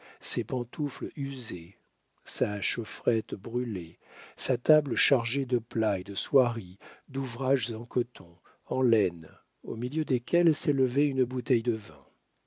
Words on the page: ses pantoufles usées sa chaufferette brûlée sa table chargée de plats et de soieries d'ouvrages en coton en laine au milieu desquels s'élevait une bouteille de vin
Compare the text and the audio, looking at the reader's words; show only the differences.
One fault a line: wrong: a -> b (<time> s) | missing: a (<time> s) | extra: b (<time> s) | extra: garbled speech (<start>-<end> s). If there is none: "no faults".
no faults